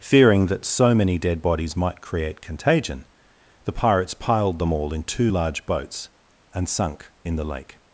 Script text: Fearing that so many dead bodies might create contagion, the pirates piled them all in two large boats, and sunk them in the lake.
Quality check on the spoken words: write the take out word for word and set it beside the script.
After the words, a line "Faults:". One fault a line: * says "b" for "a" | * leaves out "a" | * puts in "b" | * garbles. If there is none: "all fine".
Fearing that so many dead bodies might create contagion, the pirates piled them all in two large boats, and sunk in the lake.
Faults:
* leaves out "them"